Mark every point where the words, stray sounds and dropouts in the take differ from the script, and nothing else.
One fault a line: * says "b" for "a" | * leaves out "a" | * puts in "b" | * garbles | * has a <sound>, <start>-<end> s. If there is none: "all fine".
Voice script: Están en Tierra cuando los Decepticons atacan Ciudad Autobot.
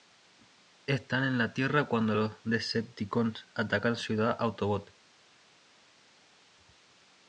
* puts in "la"